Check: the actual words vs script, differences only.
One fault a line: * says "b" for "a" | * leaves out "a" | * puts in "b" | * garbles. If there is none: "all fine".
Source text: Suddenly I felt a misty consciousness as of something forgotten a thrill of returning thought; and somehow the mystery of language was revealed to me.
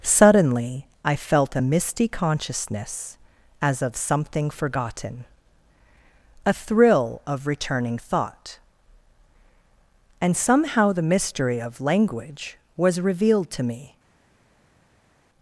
all fine